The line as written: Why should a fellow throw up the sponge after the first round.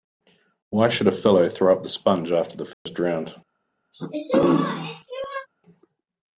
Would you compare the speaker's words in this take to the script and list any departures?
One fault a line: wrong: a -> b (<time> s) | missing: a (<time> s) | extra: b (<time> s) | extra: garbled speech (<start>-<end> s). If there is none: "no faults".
no faults